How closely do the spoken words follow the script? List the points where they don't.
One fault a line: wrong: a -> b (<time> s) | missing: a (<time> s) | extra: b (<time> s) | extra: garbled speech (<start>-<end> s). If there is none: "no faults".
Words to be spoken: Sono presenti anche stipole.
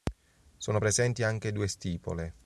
extra: due (1.5 s)